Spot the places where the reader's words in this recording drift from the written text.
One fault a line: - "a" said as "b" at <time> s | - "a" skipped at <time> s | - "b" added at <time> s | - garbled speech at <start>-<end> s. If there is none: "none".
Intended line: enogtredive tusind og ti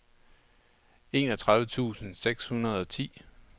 - "seks hundrede" added at 2.1 s